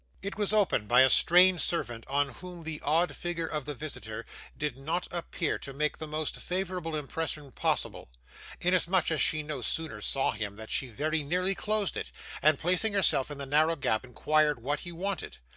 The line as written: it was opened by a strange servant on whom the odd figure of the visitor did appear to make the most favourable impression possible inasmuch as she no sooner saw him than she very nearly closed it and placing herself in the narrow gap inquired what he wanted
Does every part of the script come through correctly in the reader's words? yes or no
no